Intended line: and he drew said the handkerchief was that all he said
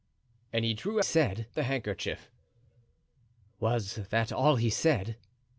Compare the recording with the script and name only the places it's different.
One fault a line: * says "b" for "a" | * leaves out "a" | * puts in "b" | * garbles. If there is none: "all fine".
all fine